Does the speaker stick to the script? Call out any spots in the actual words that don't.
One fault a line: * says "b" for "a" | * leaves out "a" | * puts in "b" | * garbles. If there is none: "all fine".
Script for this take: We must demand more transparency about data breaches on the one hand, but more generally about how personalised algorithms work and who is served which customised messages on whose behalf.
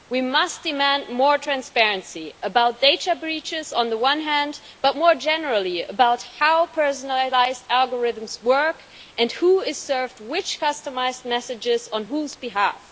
all fine